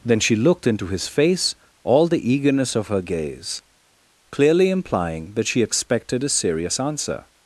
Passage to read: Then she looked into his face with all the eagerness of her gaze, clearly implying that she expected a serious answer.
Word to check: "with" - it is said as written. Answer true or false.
false